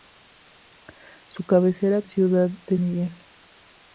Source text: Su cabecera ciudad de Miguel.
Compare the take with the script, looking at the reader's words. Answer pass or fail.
pass